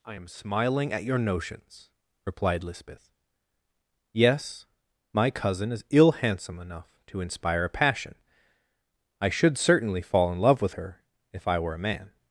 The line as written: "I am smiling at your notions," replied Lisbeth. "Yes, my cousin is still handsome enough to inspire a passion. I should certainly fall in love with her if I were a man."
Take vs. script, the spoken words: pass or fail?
fail